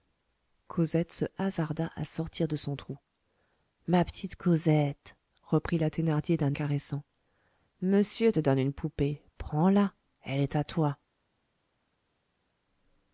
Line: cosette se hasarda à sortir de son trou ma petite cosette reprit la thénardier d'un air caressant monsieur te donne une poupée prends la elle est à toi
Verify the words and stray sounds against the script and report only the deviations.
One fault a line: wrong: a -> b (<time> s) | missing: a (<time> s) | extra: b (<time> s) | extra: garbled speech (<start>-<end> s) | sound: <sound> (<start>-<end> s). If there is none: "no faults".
missing: air (6.5 s)